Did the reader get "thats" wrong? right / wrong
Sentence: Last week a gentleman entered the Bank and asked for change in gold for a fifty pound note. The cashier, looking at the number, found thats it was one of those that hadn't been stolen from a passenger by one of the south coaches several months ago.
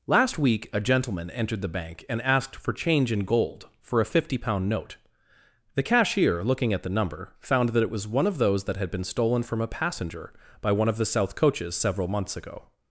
wrong